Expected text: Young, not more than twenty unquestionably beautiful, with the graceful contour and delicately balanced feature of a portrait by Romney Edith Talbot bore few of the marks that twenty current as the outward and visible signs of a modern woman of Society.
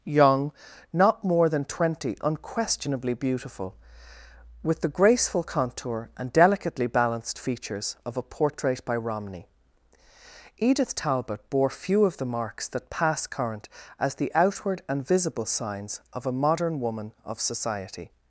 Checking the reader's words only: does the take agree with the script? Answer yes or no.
no